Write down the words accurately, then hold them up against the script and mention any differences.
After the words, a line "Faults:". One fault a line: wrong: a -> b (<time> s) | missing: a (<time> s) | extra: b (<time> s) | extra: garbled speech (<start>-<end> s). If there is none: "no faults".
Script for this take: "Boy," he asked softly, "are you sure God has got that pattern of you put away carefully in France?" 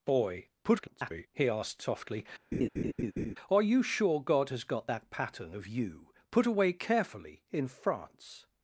"Boy," [garbled] he asked softly, "are you sure God has got that pattern of you put away carefully in France?"
Faults:
extra: garbled speech (0.6-1.3 s)